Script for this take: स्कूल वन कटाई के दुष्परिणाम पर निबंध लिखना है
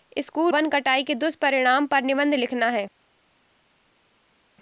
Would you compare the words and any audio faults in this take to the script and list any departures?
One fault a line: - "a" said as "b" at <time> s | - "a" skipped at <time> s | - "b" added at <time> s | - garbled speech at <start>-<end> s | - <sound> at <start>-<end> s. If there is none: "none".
none